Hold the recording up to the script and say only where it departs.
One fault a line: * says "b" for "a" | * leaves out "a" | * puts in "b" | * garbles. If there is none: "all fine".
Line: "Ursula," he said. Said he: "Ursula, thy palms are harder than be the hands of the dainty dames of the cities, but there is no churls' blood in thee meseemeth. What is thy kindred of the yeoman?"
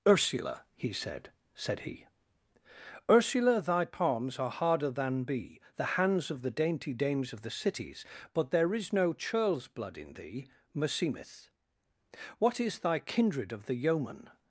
all fine